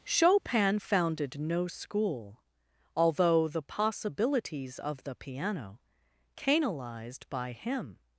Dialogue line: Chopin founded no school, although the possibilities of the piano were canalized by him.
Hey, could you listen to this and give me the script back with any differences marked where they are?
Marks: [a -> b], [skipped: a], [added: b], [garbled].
Chopin founded no school, although the possibilities of the piano [skipped: were] canalized by him.